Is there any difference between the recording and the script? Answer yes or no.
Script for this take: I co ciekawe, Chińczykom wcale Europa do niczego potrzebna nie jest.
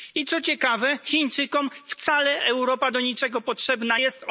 yes